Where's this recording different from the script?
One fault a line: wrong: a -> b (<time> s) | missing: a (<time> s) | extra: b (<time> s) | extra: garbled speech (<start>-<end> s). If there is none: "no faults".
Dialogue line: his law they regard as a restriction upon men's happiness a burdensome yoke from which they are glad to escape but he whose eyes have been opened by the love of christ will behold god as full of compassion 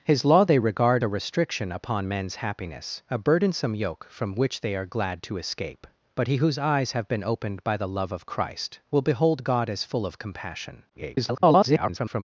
missing: as (1.0 s)
extra: garbled speech (10.9-12.2 s)